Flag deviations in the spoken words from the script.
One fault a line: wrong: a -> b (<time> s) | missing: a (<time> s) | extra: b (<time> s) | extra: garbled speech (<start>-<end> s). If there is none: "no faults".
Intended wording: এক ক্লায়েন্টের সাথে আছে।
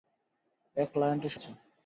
missing: সাথে (1.3 s)